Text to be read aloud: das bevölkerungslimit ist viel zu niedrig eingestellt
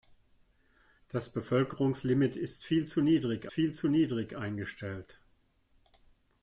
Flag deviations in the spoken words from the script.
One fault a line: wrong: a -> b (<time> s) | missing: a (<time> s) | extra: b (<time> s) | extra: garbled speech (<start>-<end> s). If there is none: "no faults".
extra: viel zu niedrig (3.5 s)